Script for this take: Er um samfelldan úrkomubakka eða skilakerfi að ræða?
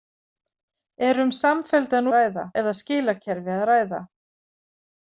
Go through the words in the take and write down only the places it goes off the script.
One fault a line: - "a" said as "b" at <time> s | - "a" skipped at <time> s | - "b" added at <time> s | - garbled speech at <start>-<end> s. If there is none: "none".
- "úrkomubakka" said as "ræða" at 2.2 s